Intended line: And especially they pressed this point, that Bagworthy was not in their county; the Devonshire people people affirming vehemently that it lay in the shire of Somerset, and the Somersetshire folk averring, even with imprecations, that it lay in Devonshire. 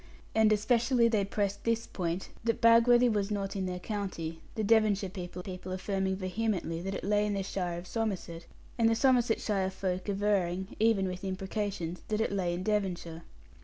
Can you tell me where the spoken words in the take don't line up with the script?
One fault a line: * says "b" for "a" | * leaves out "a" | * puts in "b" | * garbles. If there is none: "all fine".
all fine